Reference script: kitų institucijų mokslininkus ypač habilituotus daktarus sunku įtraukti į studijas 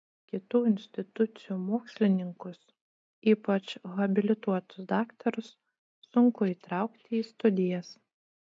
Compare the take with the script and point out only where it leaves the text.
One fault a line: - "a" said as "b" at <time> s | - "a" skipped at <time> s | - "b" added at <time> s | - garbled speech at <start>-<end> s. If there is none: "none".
none